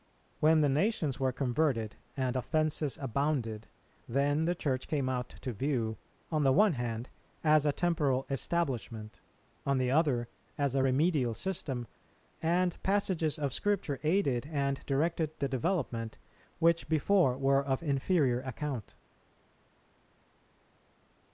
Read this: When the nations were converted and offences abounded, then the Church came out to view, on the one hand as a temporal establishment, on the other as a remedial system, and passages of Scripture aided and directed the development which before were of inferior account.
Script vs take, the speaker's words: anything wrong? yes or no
no